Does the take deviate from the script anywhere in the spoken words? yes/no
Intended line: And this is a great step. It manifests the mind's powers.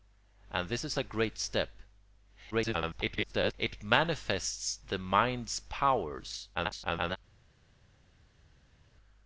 yes